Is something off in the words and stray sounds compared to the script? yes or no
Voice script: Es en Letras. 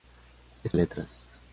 no